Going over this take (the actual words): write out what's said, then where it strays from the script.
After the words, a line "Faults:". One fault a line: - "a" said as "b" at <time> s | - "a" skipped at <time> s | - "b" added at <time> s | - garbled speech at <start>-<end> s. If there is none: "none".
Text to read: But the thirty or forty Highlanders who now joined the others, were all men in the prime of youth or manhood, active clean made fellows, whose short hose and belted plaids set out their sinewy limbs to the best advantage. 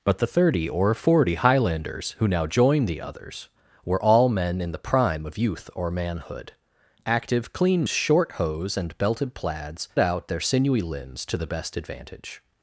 But the thirty or forty Highlanders who now joined the others, were all men in the prime of youth or manhood, active clean short hose and belted plaids out their sinewy limbs to the best advantage.
Faults:
- "made fellows whose" skipped at 7.8 s
- "set" skipped at 9.9 s